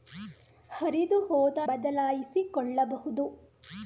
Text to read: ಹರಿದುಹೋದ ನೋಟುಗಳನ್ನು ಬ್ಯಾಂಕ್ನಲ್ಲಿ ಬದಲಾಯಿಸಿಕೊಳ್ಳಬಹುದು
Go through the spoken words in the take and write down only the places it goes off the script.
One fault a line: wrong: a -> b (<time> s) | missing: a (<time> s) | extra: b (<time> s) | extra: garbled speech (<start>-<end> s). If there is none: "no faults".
missing: ನೋಟುಗಳನ್ನು ಬ್ಯಾಂಕ್ನಲ್ಲಿ (1.6 s)